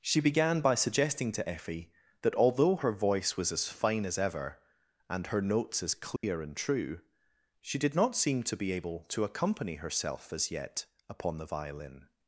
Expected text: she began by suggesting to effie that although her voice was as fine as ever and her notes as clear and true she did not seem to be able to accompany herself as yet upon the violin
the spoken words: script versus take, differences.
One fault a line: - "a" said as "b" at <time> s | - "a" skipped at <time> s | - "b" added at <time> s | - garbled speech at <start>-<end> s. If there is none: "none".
none